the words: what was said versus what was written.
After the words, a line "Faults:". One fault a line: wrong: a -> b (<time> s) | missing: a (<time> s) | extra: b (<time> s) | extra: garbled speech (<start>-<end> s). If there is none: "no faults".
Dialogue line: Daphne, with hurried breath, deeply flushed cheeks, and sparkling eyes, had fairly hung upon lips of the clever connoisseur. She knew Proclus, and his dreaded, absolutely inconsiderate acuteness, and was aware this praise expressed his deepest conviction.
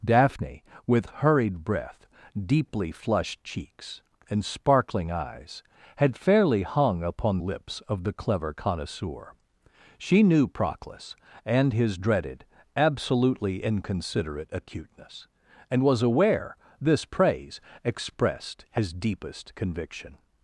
Daphne, with hurried breath, deeply flushed cheeks, and sparkling eyes, had fairly hung upon lips of the clever connoisseur. She knew Proclus, and his dreaded, absolutely inconsiderate acuteness, and was aware this praise expressed his deepest conviction.
Faults:
no faults